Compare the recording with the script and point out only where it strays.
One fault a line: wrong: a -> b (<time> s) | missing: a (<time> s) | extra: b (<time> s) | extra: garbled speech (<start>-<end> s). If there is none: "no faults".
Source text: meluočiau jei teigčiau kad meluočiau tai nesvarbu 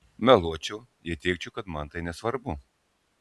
wrong: meluočiau -> man (1.8 s)